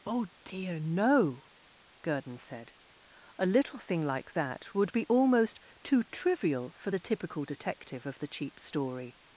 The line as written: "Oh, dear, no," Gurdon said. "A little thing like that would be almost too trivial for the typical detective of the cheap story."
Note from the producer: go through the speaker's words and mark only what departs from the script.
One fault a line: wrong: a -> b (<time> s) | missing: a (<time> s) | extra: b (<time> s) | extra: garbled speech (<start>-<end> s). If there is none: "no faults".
no faults